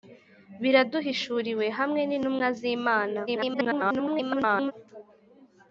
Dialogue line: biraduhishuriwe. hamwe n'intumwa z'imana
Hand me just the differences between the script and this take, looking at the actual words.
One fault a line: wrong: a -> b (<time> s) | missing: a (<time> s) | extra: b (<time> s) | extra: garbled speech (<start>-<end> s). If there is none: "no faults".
extra: garbled speech (3.3-4.7 s)